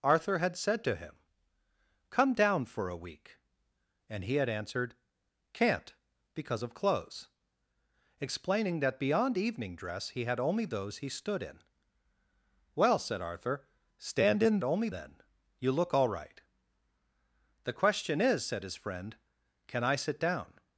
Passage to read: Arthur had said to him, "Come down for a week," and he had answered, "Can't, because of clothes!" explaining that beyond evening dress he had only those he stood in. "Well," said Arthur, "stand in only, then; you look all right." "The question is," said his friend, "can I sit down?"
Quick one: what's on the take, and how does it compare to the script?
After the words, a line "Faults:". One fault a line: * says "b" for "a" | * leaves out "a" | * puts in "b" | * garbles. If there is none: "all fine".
Arthur had said to him, "Come down for a week," and he had answered, "Can't, because of clothes!" explaining that beyond evening dress he had only those he stood in. "Well," said Arthur, "stand in only, then; you look all right." "The question is," said his friend, "can I sit down?"
Faults:
all fine